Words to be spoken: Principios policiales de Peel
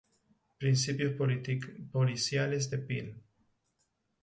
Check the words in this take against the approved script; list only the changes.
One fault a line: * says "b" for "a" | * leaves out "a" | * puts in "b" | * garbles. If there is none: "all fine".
all fine